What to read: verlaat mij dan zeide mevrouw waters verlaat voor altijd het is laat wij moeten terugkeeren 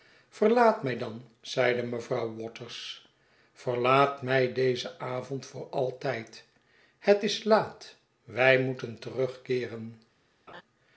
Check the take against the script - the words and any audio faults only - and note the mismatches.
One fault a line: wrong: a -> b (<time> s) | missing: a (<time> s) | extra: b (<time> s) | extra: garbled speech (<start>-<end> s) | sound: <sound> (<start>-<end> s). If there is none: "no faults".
extra: mij dezen avond (4.2 s)
sound: laugh (10.5-10.6 s)